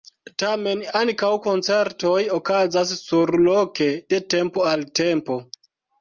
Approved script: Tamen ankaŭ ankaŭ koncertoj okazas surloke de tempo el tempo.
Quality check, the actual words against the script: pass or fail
fail